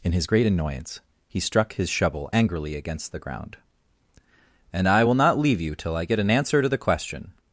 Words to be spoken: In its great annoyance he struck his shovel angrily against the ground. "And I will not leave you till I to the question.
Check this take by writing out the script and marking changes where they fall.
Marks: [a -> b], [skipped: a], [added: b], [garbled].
In [its -> his] great annoyance he struck his shovel angrily against the ground. "And I will not leave you till I [added: get an answer] to the question.